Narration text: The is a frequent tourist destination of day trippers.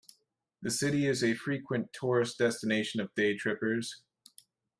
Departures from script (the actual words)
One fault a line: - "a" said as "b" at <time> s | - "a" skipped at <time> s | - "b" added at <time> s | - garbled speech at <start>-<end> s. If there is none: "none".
- "city" added at 0.7 s